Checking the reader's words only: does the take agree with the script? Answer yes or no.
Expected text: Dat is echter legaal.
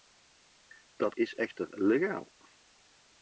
yes